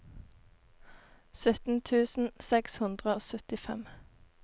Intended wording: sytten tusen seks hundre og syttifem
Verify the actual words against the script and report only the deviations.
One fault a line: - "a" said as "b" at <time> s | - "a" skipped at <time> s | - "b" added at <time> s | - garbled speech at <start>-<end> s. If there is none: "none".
none